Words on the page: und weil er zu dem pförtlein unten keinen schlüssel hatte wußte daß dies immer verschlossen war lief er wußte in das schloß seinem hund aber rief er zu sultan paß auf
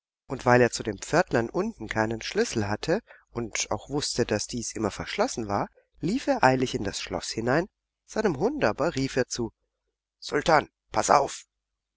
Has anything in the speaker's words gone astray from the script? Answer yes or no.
yes